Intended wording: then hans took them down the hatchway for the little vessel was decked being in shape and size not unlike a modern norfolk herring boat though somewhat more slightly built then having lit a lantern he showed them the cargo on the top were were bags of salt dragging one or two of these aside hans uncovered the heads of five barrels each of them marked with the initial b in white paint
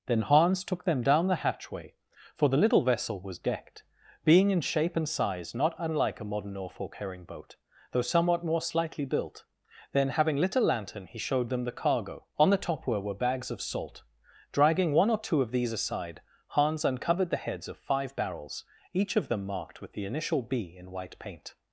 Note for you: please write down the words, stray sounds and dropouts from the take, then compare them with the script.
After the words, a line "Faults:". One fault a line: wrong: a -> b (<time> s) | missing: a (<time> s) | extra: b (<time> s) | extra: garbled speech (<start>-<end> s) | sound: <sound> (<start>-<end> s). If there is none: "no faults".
then hans took them down the hatchway for the little vessel was decked being in shape and size not unlike a modern norfolk herring boat though somewhat more slightly built then having lit a lantern he showed them the cargo on the top were were bags of salt dragging one or two of these aside hans uncovered the heads of five barrels each of them marked with the initial b in white paint
Faults:
no faults